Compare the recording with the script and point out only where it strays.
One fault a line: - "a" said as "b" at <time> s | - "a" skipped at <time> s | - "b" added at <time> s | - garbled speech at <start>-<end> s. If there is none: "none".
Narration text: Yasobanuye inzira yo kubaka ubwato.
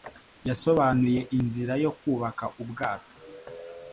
none